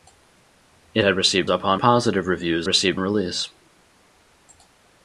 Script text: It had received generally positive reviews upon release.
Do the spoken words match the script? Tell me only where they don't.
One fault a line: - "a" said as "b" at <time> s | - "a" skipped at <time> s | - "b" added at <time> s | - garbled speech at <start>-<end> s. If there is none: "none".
- "generally" said as "upon" at 1.5 s
- "upon" said as "received" at 2.7 s